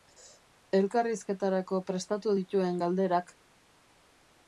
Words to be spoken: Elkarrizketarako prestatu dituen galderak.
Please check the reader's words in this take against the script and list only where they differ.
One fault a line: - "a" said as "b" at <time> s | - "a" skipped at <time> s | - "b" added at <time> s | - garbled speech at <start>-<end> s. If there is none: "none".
none